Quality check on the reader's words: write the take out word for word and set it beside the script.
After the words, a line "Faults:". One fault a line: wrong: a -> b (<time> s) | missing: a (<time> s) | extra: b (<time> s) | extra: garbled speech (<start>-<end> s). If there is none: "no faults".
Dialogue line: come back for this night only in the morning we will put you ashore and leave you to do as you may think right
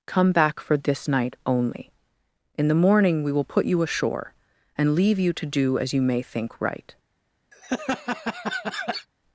come back for this night only in the morning we will put you ashore and leave you to do as you may think right
Faults:
no faults